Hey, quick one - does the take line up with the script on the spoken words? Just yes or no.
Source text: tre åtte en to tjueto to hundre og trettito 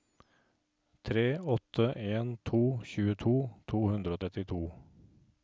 yes